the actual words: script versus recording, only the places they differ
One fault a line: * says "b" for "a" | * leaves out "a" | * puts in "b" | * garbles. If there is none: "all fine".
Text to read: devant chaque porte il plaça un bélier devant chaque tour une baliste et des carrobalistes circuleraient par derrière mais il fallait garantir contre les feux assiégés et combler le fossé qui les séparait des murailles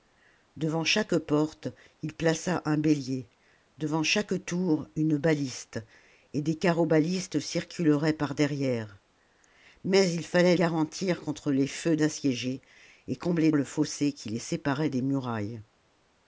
all fine